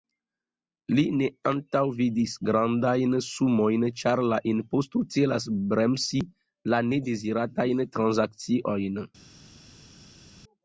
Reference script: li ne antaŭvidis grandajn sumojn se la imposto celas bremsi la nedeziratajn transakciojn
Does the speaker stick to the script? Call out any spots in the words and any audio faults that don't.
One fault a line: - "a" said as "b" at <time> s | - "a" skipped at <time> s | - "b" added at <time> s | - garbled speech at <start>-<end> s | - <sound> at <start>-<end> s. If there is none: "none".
- "se" said as "ĉar" at 4.0 s